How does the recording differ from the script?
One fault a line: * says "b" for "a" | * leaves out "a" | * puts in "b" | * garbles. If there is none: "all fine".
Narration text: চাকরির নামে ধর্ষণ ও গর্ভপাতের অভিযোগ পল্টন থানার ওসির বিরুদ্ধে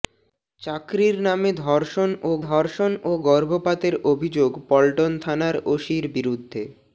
* puts in "ধর্ষণ ও"